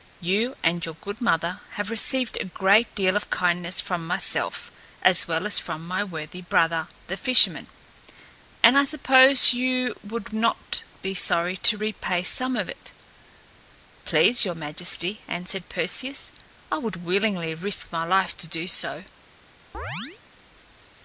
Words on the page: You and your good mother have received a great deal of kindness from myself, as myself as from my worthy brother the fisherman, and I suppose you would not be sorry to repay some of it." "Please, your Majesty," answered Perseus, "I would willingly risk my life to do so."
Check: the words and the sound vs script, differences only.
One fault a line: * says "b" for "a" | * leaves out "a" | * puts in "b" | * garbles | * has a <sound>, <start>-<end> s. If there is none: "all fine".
* says "well" for "myself"
* has a chirp, 19.7-20.2 s